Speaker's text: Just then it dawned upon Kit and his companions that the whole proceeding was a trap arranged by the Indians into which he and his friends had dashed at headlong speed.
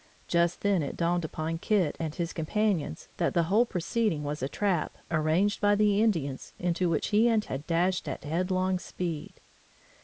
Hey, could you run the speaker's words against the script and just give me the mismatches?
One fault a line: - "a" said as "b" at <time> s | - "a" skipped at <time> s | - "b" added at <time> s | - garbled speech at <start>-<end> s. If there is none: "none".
- "his friends" skipped at 7.5 s